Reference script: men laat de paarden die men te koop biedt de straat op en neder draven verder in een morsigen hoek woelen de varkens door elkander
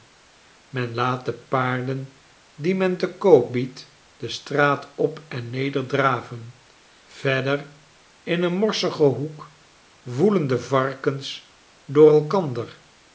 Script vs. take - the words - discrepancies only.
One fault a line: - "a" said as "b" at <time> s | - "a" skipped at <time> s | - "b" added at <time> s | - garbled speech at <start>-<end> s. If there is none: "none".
none